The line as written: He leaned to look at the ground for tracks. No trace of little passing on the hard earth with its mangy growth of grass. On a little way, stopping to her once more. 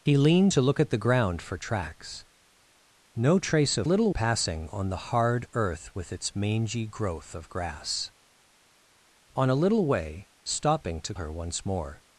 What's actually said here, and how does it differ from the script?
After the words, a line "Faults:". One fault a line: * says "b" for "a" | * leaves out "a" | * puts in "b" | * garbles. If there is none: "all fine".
He leaned to look at the ground for tracks. No trace of little passing on the hard earth with its mangy growth of grass. On a little way, stopping to her once more.
Faults:
all fine